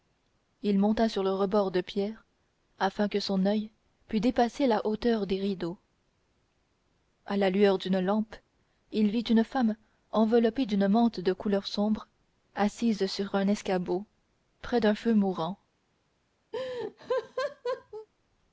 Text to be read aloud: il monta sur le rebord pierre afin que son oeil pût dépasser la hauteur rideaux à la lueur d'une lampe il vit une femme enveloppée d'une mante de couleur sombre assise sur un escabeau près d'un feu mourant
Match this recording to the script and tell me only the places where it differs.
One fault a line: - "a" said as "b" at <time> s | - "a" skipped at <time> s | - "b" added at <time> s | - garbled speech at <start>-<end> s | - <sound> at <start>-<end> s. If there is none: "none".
- "de" added at 1.7 s
- "des" added at 5.3 s
- laugh at 16.5-18.1 s